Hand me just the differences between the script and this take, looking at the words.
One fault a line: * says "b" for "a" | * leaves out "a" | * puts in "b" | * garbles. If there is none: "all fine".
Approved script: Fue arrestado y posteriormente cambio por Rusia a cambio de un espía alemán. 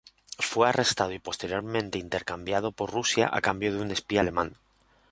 * says "intercambiado" for "cambio"